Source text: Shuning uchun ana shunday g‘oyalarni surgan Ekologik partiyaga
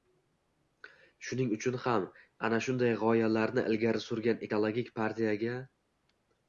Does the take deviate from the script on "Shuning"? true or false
false